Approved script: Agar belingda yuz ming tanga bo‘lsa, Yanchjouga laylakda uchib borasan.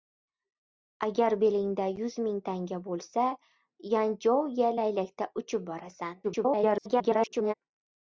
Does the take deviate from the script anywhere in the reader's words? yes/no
yes